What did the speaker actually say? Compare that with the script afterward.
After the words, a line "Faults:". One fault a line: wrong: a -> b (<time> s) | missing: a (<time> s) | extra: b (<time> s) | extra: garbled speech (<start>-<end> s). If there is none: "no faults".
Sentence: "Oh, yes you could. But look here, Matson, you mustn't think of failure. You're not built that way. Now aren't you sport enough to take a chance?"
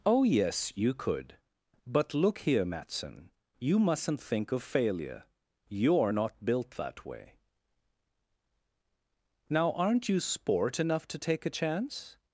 "Oh, yes you could. But look here, Matson, you mustn't think of failure. You're not built that way. Now aren't you sport enough to take a chance?"
Faults:
no faults